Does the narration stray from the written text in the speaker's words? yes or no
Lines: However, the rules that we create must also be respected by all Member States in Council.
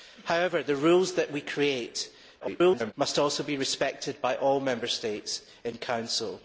yes